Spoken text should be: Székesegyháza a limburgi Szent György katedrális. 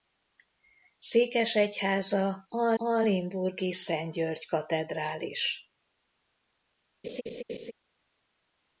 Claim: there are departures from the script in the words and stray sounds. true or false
true